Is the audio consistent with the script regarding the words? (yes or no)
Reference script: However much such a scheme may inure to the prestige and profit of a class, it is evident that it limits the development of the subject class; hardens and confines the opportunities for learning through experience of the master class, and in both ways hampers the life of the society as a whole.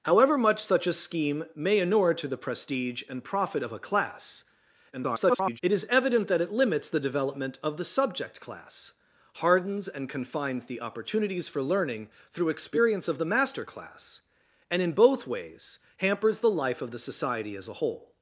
no